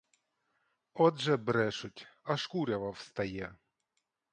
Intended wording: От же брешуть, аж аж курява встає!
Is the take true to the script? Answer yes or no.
no